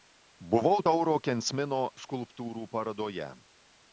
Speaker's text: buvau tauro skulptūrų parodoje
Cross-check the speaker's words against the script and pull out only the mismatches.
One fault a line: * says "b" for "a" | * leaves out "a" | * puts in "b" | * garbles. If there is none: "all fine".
* puts in "kensmino"